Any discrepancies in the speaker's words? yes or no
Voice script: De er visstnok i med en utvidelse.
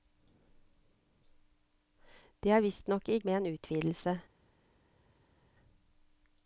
no